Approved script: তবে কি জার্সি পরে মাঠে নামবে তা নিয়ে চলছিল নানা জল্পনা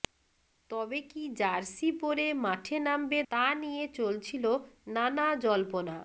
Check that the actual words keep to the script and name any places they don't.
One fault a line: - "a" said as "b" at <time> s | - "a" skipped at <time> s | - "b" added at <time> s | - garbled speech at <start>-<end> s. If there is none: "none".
none